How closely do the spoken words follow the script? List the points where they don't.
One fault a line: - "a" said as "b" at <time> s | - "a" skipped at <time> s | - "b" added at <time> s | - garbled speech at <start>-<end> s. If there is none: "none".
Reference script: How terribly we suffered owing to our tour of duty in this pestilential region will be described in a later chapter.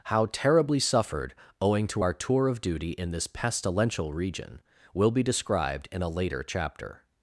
- "we" skipped at 0.8 s